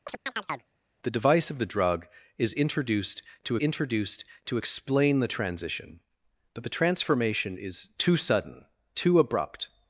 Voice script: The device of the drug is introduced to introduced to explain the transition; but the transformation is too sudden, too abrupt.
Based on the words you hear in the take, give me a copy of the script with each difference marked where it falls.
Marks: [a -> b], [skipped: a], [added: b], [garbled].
The device of the drug is introduced to introduced to explain the transition; but the transformation is too sudden, too abrupt.